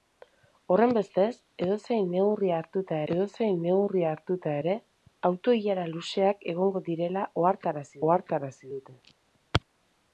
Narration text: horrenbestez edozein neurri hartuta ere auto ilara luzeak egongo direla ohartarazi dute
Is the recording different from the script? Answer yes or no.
yes